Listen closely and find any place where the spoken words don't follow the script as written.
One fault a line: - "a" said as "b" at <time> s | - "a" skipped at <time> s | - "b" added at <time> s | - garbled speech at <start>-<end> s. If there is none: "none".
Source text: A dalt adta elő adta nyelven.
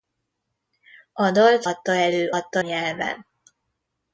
none